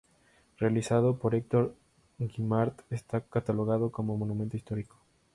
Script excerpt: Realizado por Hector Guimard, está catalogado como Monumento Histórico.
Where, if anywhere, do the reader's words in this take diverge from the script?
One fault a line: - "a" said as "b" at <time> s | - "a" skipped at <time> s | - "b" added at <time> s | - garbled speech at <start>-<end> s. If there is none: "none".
none